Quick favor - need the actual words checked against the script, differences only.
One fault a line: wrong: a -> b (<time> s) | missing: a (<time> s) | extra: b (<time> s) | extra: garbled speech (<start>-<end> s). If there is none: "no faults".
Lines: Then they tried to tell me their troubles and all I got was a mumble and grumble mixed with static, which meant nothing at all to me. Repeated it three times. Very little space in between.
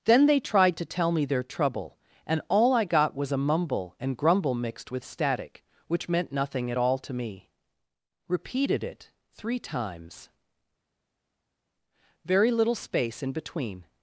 wrong: troubles -> trouble (1.4 s)